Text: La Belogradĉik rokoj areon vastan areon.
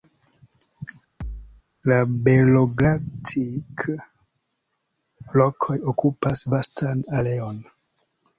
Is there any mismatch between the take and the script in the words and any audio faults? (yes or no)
yes